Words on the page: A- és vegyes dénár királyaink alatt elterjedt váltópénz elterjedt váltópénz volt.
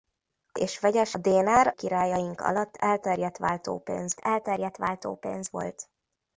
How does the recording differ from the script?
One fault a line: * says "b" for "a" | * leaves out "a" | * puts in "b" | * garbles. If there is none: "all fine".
all fine